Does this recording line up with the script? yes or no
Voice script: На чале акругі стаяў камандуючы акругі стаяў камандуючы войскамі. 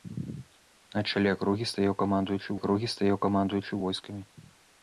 yes